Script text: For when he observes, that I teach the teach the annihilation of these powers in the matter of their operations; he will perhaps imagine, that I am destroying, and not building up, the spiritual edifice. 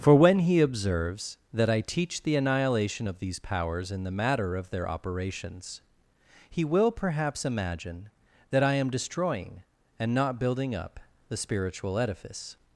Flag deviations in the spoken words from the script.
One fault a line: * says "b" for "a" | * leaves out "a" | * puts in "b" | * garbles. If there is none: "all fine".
* leaves out "teach the"